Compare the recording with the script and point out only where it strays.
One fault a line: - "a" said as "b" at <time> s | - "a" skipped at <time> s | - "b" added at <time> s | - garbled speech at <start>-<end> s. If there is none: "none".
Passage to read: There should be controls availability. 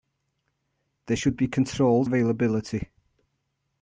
none